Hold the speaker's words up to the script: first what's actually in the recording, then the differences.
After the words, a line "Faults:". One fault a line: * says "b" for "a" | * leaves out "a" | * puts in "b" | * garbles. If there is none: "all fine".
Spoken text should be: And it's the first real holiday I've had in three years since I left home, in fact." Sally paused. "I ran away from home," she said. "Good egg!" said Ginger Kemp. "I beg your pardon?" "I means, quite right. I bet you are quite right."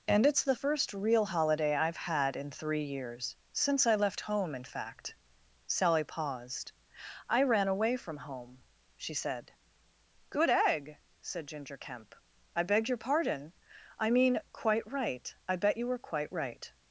And it's the first real holiday I've had in three years since I left home, in fact." Sally paused. "I ran away from home," she said. "Good egg!" said Ginger Kemp. "I beg your pardon?" "I mean, quite right. I bet you were quite right."
Faults:
* says "mean" for "means"
* says "were" for "are"